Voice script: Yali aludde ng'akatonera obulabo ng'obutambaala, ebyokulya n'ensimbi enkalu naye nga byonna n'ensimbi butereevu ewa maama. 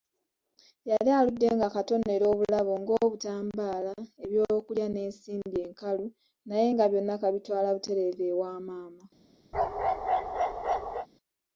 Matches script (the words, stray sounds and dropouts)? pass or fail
fail